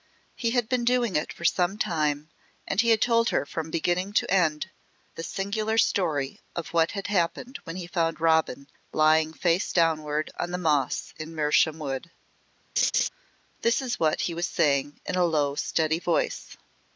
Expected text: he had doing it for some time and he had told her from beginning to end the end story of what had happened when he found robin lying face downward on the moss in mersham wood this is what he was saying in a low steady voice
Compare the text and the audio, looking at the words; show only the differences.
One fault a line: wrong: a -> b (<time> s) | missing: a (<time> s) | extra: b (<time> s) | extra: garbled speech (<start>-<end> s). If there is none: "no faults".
extra: been (0.7 s)
wrong: end -> singular (5.2 s)